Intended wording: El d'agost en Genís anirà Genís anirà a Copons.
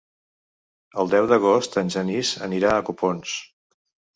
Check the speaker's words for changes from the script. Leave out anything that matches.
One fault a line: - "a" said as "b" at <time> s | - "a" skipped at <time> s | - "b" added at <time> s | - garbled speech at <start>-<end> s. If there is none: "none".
- "deu" added at 1.1 s
- "Genís anirà" skipped at 2.7 s